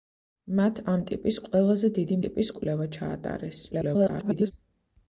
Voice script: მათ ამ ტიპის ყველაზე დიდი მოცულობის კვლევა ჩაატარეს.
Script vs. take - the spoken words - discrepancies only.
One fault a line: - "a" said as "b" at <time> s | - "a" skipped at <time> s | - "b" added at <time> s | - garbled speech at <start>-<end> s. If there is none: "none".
- "მოცულობის" said as "ტიპის" at 2.2 s
- garbled speech at 3.7-4.5 s